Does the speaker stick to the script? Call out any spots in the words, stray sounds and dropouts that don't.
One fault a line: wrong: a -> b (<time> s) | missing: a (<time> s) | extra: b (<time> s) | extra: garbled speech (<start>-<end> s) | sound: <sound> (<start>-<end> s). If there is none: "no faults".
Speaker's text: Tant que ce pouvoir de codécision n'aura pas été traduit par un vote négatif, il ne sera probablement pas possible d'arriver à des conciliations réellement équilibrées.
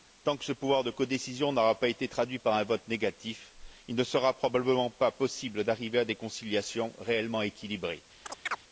sound: chirp (8.3-8.6 s)